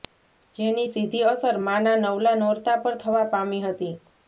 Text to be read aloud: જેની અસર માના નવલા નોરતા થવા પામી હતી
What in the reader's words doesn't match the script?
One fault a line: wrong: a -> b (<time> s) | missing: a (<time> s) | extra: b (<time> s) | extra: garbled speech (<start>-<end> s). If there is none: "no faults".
extra: સીધી (0.9 s)
extra: પર (2.8 s)